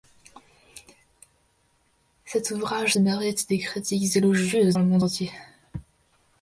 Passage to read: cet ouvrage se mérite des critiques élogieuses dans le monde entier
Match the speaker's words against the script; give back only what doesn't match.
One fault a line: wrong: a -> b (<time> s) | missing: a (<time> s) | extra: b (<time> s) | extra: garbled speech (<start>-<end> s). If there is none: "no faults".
missing: se (3.0 s)
missing: dans (4.8 s)